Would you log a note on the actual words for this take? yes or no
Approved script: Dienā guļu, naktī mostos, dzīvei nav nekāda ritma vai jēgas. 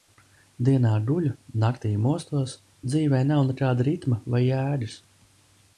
no